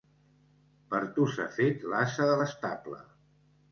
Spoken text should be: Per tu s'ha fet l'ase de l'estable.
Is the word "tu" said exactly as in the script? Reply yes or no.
yes